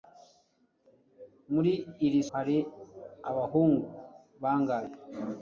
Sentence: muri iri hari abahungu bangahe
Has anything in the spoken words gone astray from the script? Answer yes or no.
no